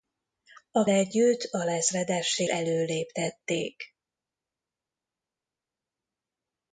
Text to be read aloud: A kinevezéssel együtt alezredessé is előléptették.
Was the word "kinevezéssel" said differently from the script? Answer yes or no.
yes